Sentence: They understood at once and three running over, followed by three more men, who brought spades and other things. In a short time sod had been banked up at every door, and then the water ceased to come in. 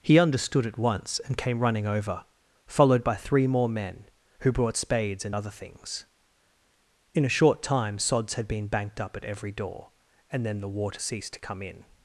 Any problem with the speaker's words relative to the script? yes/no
yes